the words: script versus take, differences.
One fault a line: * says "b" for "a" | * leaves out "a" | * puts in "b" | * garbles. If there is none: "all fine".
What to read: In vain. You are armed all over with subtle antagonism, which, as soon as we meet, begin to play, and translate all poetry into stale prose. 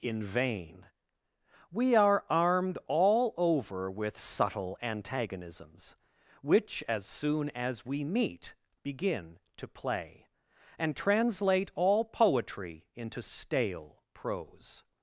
* says "We" for "You"
* says "antagonisms" for "antagonism"